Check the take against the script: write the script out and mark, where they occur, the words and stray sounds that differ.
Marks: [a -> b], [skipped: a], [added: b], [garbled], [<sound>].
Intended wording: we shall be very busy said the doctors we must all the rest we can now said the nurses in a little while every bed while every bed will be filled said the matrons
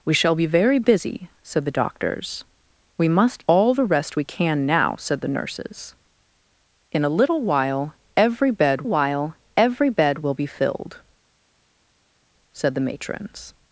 we shall be very busy said the doctors we must all the rest we can now said the nurses in a little while every bed while every bed will be filled said the matrons